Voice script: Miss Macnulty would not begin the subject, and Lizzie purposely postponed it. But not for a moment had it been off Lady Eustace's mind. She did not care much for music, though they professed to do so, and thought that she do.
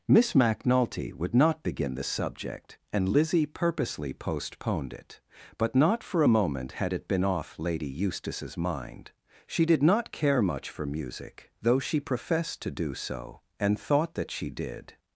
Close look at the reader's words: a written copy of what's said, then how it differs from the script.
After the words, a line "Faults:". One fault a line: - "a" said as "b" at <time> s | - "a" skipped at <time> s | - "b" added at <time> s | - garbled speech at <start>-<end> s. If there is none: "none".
Miss Macnulty would not begin the subject, and Lizzie purposely postponed it. But not for a moment had it been off Lady Eustace's mind. She did not care much for music, though she professed to do so, and thought that she did.
Faults:
- "they" said as "she" at 11.8 s
- "do" said as "did" at 14.5 s